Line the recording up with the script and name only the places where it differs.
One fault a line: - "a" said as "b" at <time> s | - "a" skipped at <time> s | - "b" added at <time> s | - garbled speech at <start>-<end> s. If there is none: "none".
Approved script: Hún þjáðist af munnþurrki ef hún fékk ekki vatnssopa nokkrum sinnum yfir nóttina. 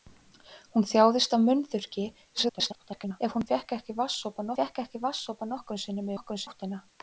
- garbled speech at 2.3-3.2 s
- "fékk ekki vatnssopa" added at 4.6 s
- "yfir" said as "nokkrum" at 6.1 s